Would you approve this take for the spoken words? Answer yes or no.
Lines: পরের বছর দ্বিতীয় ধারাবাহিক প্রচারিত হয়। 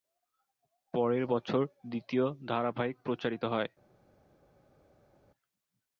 yes